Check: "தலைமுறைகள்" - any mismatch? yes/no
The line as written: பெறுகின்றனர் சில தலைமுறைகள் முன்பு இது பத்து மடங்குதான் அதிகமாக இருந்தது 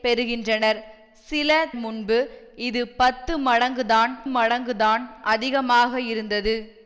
yes